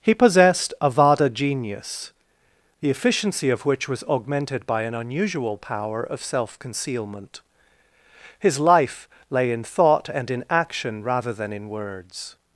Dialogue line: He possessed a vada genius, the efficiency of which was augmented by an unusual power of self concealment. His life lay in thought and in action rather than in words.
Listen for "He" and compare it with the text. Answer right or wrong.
right